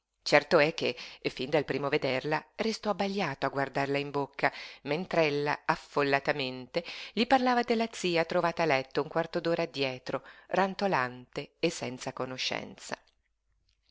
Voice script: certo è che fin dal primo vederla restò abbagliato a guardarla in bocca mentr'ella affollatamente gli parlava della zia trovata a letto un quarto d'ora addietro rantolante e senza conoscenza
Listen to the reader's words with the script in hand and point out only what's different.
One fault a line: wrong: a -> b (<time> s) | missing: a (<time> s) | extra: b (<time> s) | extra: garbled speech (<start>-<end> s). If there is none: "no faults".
no faults